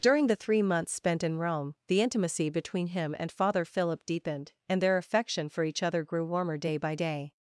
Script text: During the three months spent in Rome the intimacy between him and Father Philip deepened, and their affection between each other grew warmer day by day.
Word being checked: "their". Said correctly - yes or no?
yes